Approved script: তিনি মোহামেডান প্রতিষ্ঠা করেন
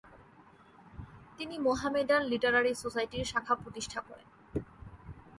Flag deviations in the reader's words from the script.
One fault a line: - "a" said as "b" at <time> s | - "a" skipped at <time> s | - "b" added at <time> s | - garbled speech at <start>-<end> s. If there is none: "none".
- "লিটারারি সোসাইটির শাখা" added at 2.3 s